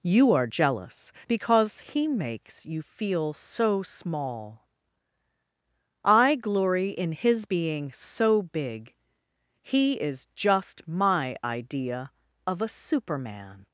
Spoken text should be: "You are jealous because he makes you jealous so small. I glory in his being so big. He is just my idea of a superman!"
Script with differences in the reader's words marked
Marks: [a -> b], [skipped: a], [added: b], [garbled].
"You are jealous because he makes you [jealous -> feel] so small. I glory in his being so big. He is just my idea of a superman!"